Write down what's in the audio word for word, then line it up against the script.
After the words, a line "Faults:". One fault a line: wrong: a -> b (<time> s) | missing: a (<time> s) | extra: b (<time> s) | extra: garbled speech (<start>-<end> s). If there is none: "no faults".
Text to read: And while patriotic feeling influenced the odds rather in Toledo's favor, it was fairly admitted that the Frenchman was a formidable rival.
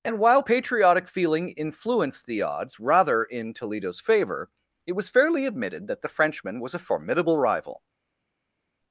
And while patriotic feeling influenced the odds rather in Toledo's favor, it was fairly admitted that the Frenchman was a formidable rival.
Faults:
no faults